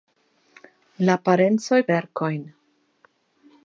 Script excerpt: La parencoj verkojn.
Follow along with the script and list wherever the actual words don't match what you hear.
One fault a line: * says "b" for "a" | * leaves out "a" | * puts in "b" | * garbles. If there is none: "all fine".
all fine